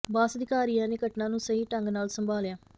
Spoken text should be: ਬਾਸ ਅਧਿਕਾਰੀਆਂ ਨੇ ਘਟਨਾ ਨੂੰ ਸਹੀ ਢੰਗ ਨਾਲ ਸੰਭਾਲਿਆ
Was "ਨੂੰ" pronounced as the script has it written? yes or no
yes